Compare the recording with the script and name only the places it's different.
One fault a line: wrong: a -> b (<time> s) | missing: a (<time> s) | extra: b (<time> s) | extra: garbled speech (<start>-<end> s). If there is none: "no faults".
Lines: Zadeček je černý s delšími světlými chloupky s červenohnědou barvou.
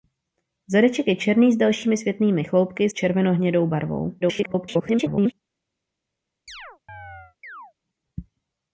missing: s (2.9 s)
extra: garbled speech (4.2-5.3 s)